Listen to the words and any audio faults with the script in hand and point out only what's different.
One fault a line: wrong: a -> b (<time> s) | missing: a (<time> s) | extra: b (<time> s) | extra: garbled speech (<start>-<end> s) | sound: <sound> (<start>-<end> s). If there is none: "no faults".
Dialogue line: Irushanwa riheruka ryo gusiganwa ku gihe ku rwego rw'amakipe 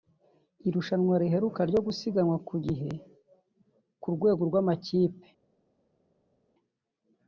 no faults